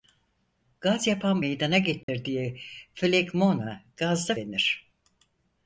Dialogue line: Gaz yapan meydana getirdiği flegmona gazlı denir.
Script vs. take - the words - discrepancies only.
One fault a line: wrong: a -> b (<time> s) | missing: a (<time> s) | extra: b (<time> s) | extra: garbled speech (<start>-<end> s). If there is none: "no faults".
no faults